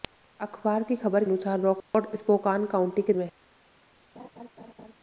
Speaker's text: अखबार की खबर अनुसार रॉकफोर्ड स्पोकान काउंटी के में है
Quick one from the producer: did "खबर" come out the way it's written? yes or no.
yes